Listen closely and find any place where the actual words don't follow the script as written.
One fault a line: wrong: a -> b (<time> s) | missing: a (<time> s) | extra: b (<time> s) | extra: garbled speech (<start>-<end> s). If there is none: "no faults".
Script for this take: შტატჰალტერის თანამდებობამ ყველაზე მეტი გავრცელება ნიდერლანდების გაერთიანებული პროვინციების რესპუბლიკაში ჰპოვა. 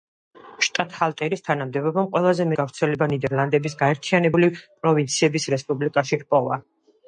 missing: მეტი (2.5 s)